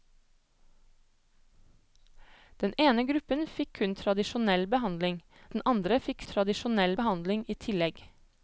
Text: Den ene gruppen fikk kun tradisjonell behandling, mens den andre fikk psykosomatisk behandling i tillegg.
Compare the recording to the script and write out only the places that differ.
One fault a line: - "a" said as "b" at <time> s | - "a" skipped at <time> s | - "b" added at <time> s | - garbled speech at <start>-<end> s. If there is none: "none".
- "mens" skipped at 5.2 s
- "psykosomatisk" said as "tradisjonell" at 6.3 s